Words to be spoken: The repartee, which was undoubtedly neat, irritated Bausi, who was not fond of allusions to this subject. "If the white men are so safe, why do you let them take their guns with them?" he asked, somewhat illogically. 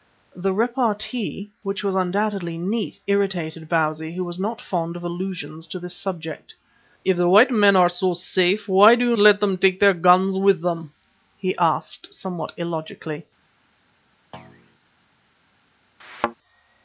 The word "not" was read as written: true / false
true